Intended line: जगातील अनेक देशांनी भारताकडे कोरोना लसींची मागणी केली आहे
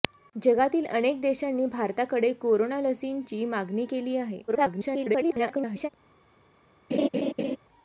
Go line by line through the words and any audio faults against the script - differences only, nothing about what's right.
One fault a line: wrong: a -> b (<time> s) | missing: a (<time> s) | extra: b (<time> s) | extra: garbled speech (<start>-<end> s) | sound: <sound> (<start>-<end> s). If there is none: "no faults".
extra: garbled speech (4.5-5.9 s)
sound: laugh (6.9-7.6 s)